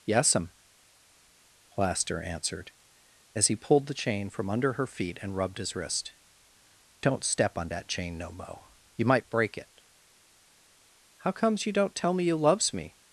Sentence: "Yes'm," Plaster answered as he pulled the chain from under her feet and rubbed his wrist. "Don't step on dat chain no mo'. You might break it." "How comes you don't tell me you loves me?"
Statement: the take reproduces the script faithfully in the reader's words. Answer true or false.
true